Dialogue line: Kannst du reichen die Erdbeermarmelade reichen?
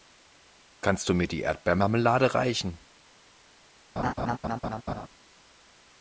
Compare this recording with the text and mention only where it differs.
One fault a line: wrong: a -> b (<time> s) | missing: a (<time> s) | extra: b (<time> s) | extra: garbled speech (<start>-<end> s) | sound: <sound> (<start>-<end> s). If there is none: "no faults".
wrong: reichen -> mir (1.1 s)
sound: laugh (4.0-5.1 s)